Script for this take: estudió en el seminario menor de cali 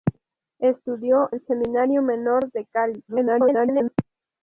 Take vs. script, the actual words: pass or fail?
fail